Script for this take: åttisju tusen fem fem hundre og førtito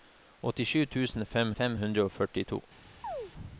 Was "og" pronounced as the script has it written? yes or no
yes